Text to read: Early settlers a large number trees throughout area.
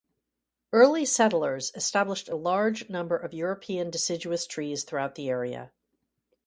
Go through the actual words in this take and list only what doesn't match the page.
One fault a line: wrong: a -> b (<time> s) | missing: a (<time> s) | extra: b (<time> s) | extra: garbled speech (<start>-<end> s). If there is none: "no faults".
extra: established (1.8 s)
extra: of European deciduous (3.2 s)
extra: the (5.2 s)